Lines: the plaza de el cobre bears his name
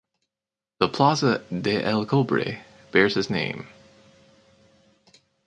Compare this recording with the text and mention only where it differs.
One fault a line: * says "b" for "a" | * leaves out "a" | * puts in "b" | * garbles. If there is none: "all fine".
all fine